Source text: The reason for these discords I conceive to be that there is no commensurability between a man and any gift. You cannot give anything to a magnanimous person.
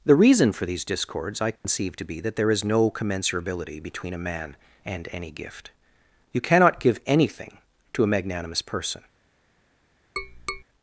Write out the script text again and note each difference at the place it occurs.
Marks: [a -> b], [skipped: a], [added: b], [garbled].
The reason for these discords I conceive to be that there is no commensurability between a man and any gift. You cannot give anything to a magnanimous person.